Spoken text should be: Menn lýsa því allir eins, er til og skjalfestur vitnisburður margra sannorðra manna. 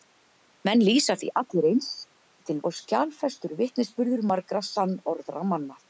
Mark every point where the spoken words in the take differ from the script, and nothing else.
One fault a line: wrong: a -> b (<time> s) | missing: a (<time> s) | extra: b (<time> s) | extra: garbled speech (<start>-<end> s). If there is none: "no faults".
no faults